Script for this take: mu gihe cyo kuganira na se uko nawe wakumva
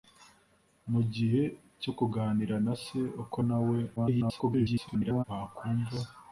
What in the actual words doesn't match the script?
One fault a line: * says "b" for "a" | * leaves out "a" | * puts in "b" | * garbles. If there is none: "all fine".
* garbles